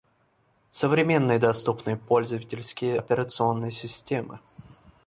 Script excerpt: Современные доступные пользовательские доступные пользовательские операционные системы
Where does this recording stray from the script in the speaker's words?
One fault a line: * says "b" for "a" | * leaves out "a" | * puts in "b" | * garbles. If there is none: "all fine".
* leaves out "доступные пользовательские"